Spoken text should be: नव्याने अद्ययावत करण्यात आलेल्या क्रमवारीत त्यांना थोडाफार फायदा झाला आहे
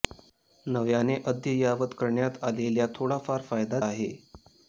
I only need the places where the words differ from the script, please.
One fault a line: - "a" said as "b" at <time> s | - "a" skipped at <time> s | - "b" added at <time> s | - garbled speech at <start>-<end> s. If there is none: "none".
- "क्रमवारीत त्यांना" skipped at 2.9 s
- "झाला" skipped at 3.8 s